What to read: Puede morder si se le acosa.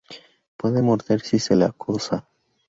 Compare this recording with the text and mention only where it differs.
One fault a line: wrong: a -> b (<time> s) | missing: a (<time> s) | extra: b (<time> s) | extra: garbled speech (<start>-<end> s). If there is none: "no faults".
no faults